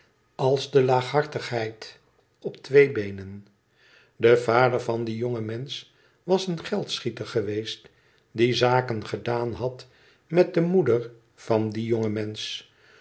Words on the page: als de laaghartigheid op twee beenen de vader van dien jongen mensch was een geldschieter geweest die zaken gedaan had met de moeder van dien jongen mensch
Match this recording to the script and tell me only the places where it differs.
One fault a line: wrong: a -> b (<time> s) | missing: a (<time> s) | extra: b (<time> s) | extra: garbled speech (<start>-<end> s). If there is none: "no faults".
no faults